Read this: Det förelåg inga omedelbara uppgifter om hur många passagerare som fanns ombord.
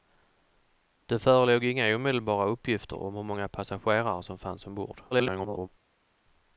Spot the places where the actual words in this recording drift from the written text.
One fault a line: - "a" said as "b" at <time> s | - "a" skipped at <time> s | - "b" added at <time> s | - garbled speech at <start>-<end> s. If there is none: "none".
- garbled speech at 5.1-5.7 s